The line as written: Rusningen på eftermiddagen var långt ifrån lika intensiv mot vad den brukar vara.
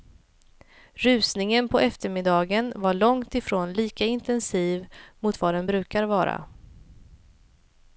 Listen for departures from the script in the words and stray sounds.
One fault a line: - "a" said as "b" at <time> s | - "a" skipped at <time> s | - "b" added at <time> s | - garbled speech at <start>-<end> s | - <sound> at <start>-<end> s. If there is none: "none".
none